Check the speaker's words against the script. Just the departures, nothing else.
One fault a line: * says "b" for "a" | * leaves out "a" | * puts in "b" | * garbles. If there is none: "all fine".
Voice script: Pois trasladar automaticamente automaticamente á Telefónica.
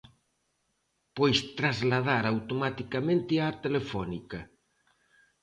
* leaves out "automaticamente"